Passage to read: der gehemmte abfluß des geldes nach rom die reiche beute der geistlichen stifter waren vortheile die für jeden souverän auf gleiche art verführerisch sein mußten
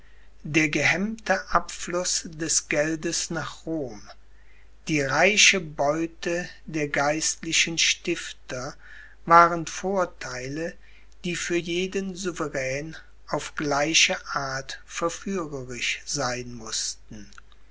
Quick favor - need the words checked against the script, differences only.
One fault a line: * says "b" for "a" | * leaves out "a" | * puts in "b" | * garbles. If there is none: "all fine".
all fine